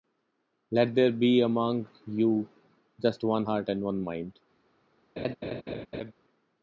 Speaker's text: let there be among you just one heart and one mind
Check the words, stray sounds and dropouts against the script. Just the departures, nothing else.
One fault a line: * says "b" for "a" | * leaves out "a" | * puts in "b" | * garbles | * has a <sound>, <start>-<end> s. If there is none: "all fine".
* has a laugh, 5.2-6.1 s